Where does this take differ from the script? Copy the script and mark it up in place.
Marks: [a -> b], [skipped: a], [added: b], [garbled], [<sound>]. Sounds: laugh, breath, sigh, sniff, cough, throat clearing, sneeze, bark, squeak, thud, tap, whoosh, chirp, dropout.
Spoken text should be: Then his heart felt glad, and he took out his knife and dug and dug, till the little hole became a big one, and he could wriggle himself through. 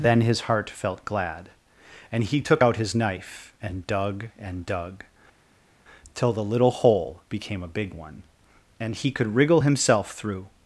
Then his heart felt glad, and he took out his knife and dug and dug, till the little hole became a big one, and he could wriggle himself through.